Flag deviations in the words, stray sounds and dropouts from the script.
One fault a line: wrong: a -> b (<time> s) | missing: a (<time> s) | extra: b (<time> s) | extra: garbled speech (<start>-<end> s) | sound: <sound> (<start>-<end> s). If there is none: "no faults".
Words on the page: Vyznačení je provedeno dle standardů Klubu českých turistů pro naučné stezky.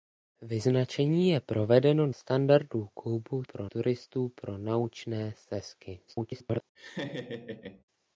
missing: dle (2.1 s)
wrong: českých -> pro (3.4 s)
extra: garbled speech (6.1-6.6 s)
sound: laugh (6.7-7.8 s)